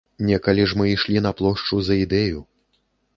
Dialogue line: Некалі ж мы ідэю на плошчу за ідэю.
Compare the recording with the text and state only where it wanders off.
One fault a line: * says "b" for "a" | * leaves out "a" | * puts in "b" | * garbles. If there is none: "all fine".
* says "ішлі" for "ідэю"